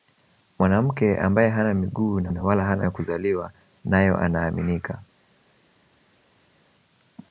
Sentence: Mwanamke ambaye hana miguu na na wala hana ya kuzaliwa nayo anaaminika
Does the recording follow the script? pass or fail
pass